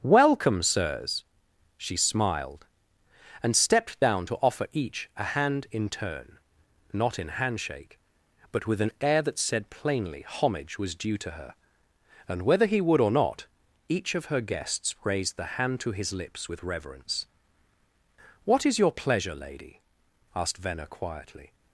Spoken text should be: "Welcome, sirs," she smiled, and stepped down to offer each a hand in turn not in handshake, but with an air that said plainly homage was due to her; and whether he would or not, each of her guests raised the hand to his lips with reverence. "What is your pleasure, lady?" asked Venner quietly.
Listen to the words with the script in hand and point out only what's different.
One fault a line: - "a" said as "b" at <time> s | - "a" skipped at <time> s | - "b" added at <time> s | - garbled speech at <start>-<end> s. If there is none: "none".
none